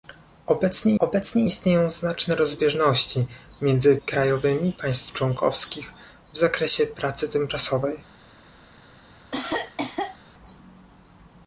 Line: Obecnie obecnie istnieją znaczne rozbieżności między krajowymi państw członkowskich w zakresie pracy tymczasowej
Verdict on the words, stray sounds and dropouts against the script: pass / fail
fail